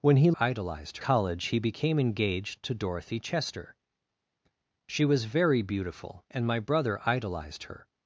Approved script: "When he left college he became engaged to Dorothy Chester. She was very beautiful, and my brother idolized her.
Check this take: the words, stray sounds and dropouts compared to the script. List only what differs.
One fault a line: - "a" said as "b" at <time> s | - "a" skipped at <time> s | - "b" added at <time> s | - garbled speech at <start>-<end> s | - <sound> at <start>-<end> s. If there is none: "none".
- "left" said as "idolized" at 0.4 s